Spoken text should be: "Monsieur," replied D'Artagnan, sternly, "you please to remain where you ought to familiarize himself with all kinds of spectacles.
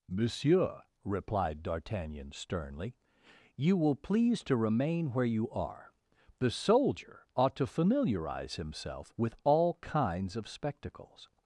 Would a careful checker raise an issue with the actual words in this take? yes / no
yes